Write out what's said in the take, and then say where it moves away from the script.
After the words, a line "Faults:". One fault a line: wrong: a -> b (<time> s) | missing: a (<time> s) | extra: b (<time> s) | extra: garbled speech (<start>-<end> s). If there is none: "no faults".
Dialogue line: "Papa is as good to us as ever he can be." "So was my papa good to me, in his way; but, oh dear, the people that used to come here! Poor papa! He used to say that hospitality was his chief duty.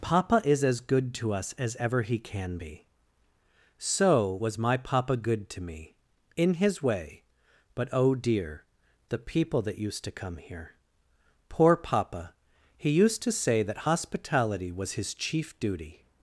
"Papa is as good to us as ever he can be." "So was my papa good to me, in his way; but, oh dear, the people that used to come here! Poor papa! He used to say that hospitality was his chief duty.
Faults:
no faults